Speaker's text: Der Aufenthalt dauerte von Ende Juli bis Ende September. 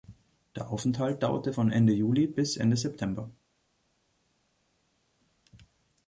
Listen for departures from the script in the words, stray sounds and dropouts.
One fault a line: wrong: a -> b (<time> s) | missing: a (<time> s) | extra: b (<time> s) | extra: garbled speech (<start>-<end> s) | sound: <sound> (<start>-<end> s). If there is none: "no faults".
no faults